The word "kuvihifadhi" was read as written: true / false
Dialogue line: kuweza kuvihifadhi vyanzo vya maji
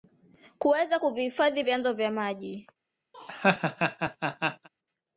true